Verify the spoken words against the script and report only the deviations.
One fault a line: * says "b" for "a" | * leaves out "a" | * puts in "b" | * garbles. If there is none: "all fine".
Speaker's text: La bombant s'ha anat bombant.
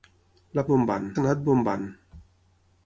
all fine